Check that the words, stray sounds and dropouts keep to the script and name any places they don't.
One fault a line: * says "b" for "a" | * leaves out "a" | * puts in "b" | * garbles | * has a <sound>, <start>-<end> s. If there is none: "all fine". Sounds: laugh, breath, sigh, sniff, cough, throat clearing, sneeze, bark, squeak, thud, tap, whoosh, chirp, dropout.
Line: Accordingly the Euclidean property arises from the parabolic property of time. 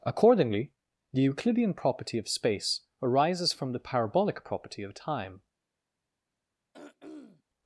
* puts in "of space"
* has a throat clearing, 6.7-7.4 s